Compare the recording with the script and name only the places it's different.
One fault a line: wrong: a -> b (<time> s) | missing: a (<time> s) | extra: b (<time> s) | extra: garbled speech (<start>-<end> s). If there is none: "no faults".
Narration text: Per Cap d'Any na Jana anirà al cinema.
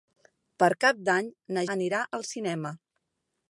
missing: Jana (1.6 s)